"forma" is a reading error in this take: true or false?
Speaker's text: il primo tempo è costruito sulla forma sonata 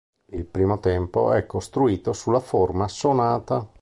false